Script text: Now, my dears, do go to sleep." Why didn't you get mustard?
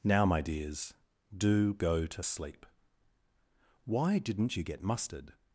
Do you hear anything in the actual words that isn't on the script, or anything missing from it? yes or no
no